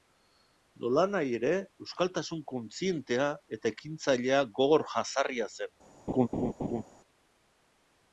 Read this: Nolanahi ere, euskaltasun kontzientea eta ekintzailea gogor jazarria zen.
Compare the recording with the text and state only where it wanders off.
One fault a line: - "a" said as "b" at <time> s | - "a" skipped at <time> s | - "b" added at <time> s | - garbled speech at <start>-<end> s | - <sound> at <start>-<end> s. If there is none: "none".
- laugh at 6.1-6.8 s